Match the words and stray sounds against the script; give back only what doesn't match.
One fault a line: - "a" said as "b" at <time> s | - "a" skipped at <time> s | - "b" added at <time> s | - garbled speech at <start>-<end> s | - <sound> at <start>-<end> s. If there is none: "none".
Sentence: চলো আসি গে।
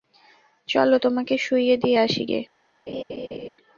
- "তোমাকে শুইয়ে দিয়ে" added at 1.0 s
- laugh at 2.9-3.5 s